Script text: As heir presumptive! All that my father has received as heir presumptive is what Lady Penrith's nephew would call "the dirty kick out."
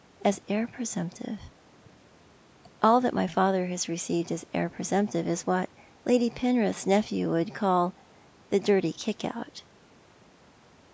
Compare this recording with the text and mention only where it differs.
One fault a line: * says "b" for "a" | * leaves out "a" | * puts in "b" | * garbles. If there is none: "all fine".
all fine